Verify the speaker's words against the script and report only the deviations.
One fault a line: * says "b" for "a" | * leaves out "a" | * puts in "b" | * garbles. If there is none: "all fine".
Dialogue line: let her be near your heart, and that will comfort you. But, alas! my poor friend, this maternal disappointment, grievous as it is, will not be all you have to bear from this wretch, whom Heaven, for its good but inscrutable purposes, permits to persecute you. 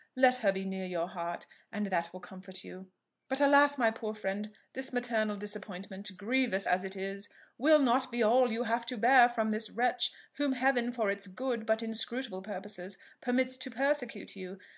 all fine